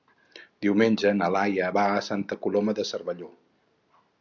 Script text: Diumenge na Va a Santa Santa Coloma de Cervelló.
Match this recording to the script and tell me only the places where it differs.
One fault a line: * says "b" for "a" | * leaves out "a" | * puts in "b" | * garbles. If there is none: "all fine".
* puts in "Laia"
* leaves out "Santa"